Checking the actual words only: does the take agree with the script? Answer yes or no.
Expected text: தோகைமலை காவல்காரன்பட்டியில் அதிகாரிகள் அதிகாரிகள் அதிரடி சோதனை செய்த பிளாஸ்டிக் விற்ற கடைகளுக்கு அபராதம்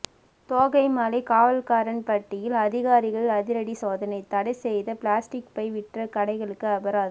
no